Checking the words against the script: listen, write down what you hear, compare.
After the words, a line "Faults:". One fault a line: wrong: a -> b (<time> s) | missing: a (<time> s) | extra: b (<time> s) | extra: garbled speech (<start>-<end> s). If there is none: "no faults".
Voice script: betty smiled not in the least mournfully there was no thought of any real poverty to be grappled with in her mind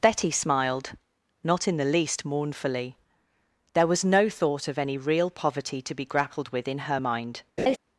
betty smiled not in the least mournfully there was no thought of any real poverty to be grappled with in her mind
Faults:
no faults